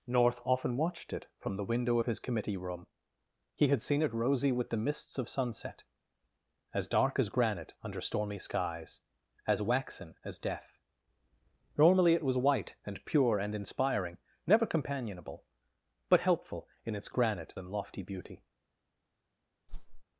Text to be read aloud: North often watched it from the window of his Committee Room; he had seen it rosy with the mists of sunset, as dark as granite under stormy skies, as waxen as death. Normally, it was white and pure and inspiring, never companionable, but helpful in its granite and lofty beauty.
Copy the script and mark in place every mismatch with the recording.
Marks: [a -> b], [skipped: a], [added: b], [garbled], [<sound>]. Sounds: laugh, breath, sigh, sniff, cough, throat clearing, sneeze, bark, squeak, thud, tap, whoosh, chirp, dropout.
North often watched it from the window of his Committee Room; he had seen it rosy with the mists of sunset, as dark as granite under stormy skies, as waxen as death. Normally, it was white and pure and inspiring, never companionable, but helpful in its granite and lofty beauty. [whoosh]